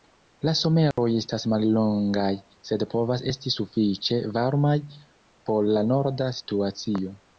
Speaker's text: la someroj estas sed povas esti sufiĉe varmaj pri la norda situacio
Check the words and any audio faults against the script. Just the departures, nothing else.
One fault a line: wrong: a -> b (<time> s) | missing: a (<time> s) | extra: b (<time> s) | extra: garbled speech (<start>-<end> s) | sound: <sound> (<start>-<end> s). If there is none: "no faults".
sound: dropout (0.9-1.0 s)
extra: mallongaj (1.5 s)
wrong: pri -> por (5.5 s)